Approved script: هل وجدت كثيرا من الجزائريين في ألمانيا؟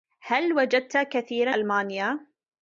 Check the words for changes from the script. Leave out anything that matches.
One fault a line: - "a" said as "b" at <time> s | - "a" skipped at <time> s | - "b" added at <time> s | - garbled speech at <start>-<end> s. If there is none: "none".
- "من الجزائريين في" skipped at 1.5 s